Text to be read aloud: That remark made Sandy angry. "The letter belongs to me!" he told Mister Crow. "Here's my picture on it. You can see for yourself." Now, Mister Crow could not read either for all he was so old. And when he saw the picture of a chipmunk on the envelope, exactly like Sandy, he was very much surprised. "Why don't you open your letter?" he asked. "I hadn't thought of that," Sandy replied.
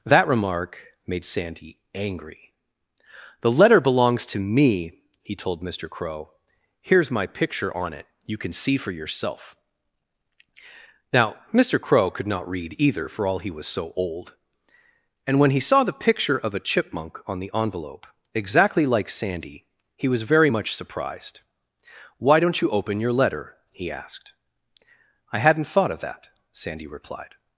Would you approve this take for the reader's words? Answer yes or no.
yes